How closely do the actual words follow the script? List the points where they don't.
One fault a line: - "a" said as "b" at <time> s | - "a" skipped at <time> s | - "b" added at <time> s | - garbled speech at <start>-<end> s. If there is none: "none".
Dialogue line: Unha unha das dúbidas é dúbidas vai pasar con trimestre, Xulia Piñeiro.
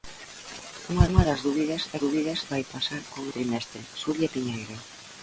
none